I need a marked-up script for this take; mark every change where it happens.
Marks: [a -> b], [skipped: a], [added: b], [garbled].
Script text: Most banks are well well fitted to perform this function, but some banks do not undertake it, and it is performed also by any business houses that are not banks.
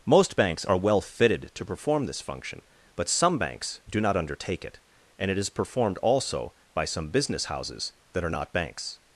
Most banks are well [skipped: well] fitted to perform this function, but some banks do not undertake it, and it is performed also by [any -> some] business houses that are not banks.